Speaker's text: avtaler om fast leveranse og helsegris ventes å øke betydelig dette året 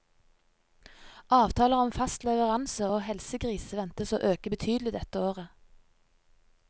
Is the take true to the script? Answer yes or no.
yes